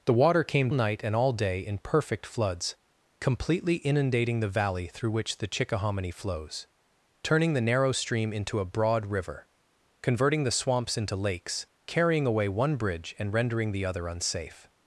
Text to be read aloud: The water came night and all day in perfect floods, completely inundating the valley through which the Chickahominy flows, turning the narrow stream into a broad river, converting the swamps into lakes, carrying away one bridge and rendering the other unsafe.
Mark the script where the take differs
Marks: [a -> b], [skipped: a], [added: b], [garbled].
The water came night and all day in perfect floods, completely inundating the valley through which the Chickahominy flows, turning the narrow stream into a broad river, converting the swamps into lakes, carrying away one bridge and rendering the other unsafe.